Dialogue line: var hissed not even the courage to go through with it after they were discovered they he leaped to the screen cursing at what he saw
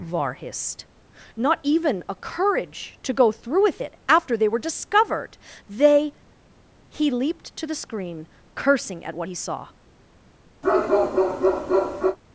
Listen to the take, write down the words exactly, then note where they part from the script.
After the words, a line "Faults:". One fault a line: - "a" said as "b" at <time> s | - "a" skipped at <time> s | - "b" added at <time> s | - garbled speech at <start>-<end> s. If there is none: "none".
var hissed not even a courage to go through with it after they were discovered they he leaped to the screen cursing at what he saw
Faults:
- "the" said as "a" at 2.1 s